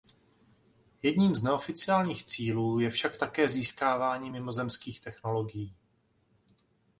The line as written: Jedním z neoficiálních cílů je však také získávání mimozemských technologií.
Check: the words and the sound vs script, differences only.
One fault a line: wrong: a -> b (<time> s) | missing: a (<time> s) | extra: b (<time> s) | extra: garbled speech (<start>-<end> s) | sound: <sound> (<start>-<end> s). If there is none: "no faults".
no faults